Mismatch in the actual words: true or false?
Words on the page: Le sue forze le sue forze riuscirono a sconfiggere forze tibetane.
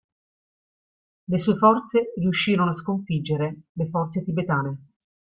true